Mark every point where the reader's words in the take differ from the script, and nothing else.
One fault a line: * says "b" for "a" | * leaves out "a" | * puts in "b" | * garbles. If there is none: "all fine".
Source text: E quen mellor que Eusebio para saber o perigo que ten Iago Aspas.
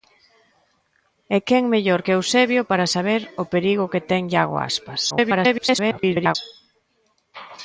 * garbles